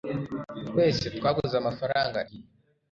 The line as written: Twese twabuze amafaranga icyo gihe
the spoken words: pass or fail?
fail